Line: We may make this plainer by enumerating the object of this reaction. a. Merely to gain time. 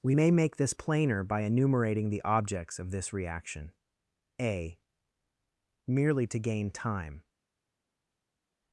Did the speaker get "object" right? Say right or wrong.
wrong